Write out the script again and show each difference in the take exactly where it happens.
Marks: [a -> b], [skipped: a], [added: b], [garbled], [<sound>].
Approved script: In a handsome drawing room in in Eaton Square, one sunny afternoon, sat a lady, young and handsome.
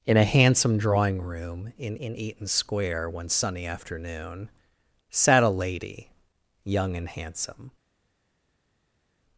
In a handsome drawing room in in Eaton Square, one sunny afternoon, sat a lady, young and handsome.